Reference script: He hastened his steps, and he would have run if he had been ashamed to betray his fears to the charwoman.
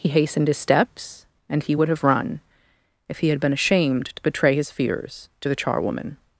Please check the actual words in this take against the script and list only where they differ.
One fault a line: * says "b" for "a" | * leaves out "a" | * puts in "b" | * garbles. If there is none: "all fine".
all fine